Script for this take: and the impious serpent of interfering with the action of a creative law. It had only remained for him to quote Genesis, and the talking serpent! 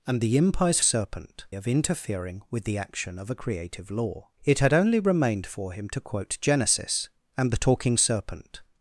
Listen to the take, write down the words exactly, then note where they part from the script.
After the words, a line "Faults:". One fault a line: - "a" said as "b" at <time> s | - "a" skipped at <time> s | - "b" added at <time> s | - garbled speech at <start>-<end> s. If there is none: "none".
and the impious serpent of interfering with the action of a creative law. It had only remained for him to quote Genesis, and the talking serpent!
Faults:
none